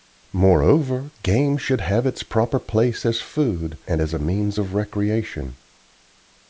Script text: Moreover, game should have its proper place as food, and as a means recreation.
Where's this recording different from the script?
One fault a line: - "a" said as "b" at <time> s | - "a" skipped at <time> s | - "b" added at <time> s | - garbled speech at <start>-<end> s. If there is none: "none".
- "of" added at 4.6 s